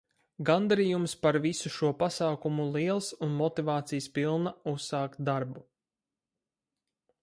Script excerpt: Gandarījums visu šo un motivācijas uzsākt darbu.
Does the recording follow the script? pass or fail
fail